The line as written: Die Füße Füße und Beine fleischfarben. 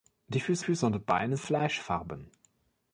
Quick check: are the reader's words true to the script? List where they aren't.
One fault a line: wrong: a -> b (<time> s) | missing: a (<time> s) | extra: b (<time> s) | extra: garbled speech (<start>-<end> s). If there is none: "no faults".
no faults